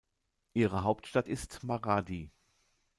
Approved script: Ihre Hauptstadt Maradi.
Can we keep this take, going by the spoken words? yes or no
no